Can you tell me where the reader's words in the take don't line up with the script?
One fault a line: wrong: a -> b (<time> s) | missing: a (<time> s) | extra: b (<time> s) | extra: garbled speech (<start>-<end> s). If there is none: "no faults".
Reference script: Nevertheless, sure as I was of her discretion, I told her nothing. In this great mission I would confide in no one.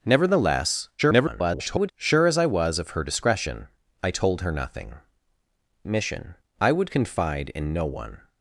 extra: garbled speech (1.0-1.9 s)
missing: In this great (5.0 s)